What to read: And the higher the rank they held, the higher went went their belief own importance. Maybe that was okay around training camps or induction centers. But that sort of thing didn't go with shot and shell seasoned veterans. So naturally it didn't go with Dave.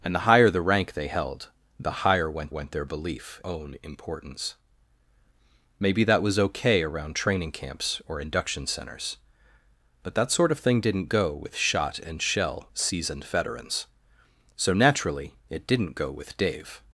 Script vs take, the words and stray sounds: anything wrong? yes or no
no